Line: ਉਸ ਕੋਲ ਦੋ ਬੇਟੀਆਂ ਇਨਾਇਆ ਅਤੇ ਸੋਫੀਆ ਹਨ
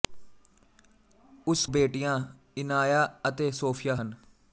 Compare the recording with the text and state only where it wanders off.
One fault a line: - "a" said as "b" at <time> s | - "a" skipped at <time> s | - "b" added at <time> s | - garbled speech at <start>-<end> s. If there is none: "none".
- "ਕੋਲ ਦੋ" skipped at 1.6 s